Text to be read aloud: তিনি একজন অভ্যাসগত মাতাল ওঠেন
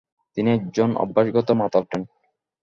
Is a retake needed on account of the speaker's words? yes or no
no